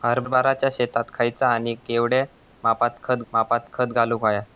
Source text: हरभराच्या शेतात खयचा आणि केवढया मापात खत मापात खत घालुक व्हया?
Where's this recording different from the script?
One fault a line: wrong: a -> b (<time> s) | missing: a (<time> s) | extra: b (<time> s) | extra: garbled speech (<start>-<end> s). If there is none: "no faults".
no faults